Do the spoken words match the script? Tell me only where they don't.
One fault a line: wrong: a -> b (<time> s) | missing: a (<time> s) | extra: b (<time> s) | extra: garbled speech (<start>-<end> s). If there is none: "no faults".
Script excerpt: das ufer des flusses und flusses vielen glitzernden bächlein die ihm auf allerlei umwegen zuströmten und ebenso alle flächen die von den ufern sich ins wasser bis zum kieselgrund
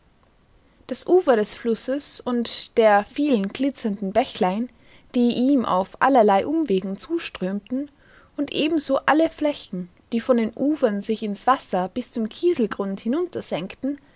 wrong: flusses -> der (2.8 s)